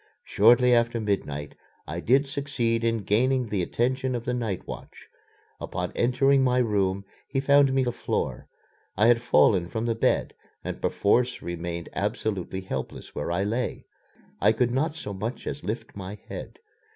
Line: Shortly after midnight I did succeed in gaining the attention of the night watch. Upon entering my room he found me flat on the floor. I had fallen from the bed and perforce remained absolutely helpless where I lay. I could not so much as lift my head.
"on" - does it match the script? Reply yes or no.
no